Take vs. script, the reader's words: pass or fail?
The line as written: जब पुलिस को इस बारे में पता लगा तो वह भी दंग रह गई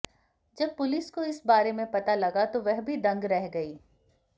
pass